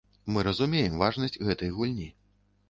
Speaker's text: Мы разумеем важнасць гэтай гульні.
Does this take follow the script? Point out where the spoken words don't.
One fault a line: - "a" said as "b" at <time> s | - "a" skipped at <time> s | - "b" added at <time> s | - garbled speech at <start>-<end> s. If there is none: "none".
none